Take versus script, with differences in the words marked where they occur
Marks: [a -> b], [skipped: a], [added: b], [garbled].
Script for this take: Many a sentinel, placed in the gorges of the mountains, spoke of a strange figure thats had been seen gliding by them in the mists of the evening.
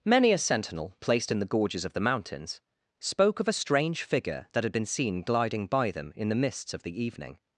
Many a sentinel, placed in the gorges of the mountains, spoke of a strange figure [thats -> that] had been seen gliding by them in the mists of the evening.